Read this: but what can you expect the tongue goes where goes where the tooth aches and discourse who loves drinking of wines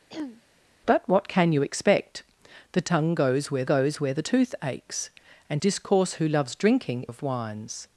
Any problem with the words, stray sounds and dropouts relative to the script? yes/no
yes